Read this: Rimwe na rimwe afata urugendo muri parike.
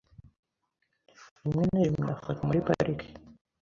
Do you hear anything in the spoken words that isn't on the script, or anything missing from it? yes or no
yes